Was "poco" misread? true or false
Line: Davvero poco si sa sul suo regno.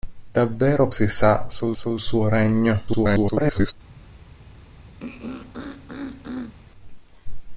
true